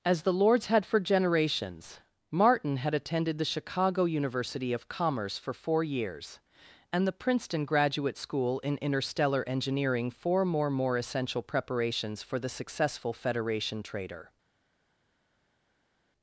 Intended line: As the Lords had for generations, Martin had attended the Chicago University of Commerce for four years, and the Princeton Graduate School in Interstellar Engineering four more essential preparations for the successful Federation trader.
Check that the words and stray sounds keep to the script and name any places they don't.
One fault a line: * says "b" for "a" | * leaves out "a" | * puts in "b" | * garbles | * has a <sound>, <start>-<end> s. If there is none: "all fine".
* puts in "more"